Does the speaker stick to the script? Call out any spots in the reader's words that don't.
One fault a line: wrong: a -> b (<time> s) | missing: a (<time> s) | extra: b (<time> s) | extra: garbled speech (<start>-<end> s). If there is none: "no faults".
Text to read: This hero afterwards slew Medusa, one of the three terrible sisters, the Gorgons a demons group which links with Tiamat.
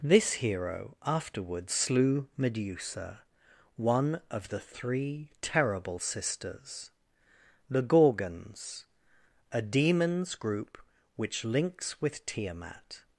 no faults